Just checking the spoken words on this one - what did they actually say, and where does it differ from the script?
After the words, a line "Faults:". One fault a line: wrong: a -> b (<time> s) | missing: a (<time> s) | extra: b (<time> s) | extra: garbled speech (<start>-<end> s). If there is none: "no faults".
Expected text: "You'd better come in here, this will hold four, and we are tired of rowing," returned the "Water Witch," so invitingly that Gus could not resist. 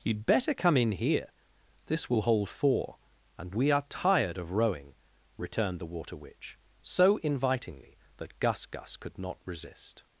"You'd better come in here, this will hold four, and we are tired of rowing," returned the "Water Witch," so invitingly that Gus Gus could not resist.
Faults:
extra: Gus (8.7 s)